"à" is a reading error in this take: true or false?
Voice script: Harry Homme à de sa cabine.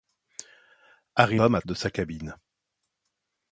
false